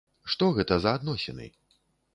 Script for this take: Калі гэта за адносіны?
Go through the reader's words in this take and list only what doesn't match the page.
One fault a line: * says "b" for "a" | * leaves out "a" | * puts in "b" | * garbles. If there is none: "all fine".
* says "Што" for "Калі"